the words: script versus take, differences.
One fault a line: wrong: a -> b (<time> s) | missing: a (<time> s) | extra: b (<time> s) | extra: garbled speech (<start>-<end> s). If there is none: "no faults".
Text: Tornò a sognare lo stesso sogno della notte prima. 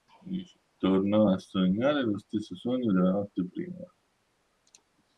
no faults